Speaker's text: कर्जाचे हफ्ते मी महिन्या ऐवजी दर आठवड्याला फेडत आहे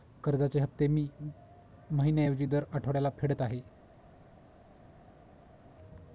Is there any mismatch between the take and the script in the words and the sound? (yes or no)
no